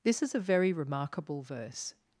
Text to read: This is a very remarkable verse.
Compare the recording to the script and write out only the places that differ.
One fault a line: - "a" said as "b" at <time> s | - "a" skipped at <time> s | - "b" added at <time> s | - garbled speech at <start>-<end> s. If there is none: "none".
none